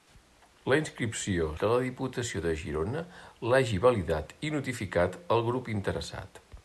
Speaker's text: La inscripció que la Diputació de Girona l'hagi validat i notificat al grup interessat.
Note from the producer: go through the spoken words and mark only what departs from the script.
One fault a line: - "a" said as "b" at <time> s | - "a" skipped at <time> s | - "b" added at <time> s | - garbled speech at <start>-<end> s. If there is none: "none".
none